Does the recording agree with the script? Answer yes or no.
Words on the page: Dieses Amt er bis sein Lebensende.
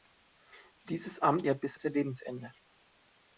yes